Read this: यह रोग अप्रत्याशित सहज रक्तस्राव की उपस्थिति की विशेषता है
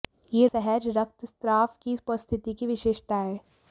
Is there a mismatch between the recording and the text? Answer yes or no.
yes